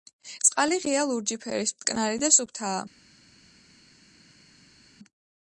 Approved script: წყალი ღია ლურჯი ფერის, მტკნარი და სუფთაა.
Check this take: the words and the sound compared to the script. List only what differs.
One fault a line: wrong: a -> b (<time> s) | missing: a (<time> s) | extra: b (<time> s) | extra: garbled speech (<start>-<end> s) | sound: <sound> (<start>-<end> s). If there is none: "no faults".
no faults